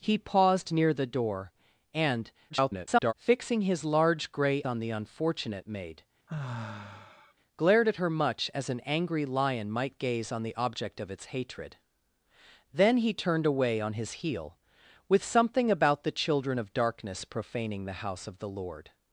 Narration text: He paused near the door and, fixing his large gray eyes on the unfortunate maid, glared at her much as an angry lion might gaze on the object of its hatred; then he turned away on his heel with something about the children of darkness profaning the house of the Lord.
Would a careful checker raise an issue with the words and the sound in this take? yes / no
yes